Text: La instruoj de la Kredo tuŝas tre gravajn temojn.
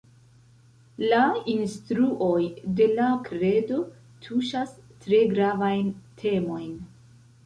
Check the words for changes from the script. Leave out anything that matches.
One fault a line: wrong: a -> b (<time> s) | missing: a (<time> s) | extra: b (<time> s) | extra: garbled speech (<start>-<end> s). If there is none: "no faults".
no faults